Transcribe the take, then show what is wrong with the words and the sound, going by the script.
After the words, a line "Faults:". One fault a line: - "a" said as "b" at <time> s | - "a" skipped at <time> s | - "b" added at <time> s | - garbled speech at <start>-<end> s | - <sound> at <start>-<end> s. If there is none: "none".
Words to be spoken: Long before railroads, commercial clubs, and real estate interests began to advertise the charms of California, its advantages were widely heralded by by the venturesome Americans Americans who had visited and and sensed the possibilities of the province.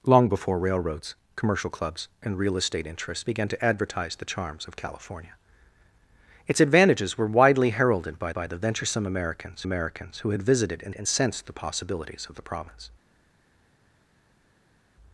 Long before railroads, commercial clubs, and real estate interests began to advertise the charms of California, its advantages were widely heralded by by the venturesome Americans Americans who had visited and and sensed the possibilities of the province.
Faults:
none